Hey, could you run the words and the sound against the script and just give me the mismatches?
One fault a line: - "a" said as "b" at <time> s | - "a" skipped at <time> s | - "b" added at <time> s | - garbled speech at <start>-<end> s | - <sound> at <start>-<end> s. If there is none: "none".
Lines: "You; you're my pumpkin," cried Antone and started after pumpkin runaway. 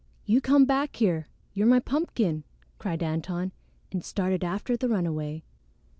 - "come back here" added at 0.4 s
- "pumpkin" said as "the" at 4.8 s